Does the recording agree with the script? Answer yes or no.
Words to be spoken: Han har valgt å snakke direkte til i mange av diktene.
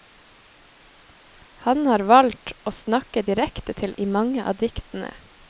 yes